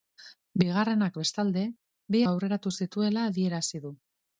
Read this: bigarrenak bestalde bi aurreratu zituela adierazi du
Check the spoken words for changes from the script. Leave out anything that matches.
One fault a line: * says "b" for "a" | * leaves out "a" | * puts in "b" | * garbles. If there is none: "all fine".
all fine